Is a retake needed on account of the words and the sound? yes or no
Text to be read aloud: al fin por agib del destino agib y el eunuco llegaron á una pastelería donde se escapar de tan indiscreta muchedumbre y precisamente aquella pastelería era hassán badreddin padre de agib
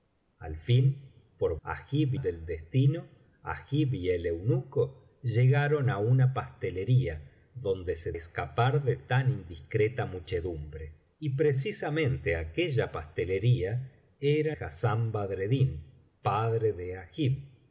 no